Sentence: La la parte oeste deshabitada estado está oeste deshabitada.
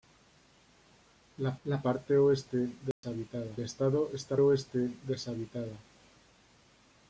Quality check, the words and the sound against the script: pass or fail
fail